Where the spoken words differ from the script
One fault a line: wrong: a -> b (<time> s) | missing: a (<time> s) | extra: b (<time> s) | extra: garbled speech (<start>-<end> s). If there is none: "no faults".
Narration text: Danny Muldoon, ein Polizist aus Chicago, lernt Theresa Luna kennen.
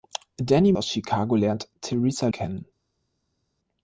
missing: Muldoon ein Polizist (0.7 s)
missing: Luna (2.3 s)